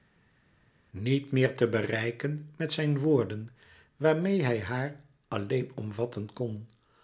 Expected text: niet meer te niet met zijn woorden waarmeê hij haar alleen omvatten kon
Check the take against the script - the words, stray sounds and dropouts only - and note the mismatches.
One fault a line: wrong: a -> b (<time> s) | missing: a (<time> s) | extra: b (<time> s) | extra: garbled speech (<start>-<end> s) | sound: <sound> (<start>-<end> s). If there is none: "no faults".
wrong: niet -> bereiken (1.7 s)